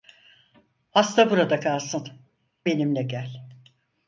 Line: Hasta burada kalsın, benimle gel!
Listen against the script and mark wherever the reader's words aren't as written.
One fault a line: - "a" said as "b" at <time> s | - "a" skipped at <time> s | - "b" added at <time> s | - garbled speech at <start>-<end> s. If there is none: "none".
none